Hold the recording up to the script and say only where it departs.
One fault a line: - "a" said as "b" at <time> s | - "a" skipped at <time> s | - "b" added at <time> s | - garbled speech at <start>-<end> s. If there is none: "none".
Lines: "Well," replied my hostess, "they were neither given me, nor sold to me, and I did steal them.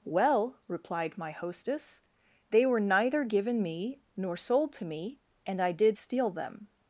none